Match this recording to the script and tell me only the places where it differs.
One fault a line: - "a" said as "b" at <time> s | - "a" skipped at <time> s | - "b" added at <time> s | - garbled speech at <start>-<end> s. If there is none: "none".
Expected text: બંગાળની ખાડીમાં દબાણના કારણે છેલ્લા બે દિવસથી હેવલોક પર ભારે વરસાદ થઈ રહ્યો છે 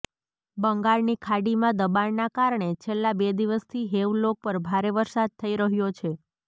none